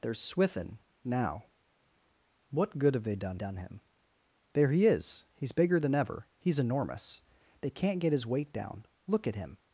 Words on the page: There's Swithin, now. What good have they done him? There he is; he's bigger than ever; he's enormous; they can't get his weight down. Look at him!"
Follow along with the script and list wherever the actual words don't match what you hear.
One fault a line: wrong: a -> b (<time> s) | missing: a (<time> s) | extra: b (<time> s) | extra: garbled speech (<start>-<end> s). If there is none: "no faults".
extra: done (3.3 s)